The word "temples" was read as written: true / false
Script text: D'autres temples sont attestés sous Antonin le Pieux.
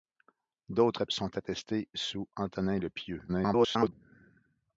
false